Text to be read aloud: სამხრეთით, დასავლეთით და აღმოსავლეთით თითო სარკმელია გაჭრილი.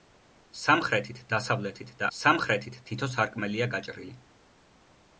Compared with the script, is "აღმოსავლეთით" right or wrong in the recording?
wrong